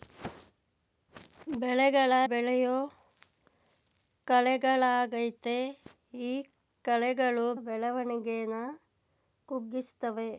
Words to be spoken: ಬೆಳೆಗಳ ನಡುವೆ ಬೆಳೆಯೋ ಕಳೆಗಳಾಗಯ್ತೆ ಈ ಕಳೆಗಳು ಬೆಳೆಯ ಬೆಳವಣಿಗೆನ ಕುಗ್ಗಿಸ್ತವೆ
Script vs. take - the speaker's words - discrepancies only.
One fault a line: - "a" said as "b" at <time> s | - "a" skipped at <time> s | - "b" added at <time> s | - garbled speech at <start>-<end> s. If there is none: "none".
- "ನಡುವೆ" skipped at 2.1 s
- "ಬೆಳೆಯ" skipped at 7.5 s